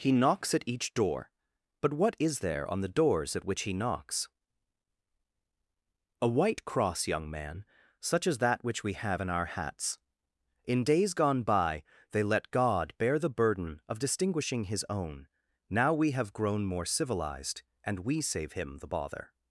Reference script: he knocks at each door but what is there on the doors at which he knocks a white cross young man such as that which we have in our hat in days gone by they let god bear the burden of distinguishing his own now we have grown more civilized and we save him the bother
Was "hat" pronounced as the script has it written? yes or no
no